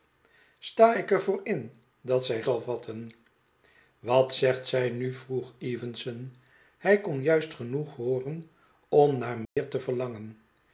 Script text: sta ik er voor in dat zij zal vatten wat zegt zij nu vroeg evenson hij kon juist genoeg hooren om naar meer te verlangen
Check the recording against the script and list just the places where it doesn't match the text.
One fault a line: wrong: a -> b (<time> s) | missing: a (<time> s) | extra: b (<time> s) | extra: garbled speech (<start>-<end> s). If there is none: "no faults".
no faults